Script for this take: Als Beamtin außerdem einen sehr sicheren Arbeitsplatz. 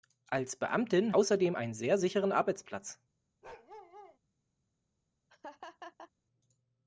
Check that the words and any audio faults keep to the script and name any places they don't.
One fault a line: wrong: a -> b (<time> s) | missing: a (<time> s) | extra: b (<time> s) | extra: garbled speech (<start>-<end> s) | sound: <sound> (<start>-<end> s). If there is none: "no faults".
sound: bark (3.4-4.2 s)
sound: laugh (5.3-6.1 s)